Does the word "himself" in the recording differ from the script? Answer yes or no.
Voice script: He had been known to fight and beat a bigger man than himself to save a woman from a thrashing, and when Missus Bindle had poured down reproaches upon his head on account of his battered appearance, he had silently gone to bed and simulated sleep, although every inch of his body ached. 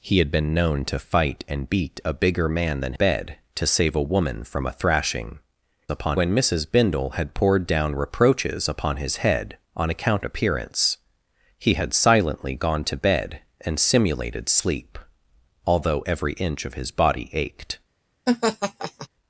yes